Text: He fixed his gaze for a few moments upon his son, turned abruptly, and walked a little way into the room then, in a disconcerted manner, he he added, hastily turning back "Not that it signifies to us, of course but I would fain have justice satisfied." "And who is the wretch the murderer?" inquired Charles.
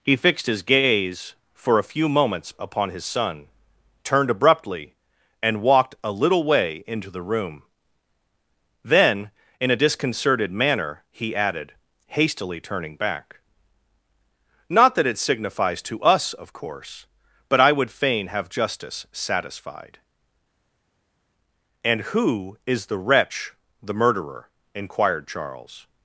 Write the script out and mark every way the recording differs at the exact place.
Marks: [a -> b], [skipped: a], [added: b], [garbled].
He fixed his gaze for a few moments upon his son, turned abruptly, and walked a little way into the room then, in a disconcerted manner, he [skipped: he] added, hastily turning back "Not that it signifies to us, of course but I would fain have justice satisfied." "And who is the wretch the murderer?" inquired Charles.